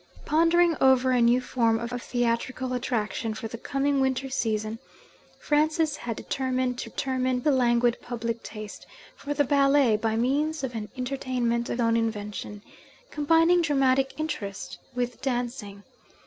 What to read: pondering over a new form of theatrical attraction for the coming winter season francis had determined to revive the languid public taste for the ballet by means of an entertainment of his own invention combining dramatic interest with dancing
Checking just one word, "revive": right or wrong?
wrong